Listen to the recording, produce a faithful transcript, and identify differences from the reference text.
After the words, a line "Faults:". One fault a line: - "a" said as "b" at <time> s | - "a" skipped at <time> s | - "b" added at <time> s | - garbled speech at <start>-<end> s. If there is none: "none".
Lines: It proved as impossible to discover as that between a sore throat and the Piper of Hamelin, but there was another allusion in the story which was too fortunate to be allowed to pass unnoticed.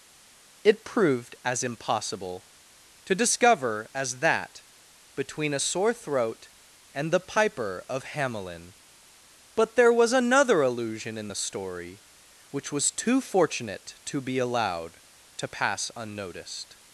It proved as impossible to discover as that between a sore throat and the Piper of Hamelin, but there was another allusion in the story which was too fortunate to be allowed to pass unnoticed.
Faults:
none